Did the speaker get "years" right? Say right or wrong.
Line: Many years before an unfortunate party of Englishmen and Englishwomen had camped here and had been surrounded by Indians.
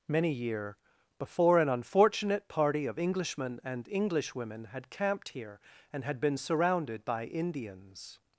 wrong